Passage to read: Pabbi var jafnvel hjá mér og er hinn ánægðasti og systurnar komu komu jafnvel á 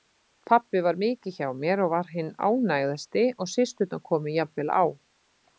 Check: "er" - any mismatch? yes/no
yes